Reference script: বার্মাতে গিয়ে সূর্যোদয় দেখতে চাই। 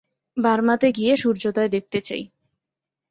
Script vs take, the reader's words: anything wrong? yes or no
no